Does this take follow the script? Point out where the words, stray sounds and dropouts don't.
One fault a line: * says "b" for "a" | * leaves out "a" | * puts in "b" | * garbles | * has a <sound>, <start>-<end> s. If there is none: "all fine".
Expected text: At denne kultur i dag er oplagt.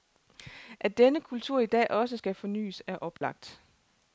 * puts in "også skal fornyes"
* has a dropout, 3.2-3.2 s